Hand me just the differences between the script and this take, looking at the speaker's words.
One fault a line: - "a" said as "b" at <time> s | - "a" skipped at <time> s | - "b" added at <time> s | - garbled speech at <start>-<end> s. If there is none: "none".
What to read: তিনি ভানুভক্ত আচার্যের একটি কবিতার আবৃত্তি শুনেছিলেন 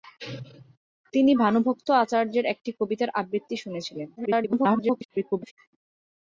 - garbled speech at 4.2-5.5 s